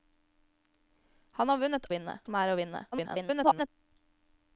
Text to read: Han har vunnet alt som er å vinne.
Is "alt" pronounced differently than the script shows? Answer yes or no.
yes